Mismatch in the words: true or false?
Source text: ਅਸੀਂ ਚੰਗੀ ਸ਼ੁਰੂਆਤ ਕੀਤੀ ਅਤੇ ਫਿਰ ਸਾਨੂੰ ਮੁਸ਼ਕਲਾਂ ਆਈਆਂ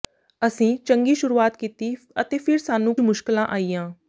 false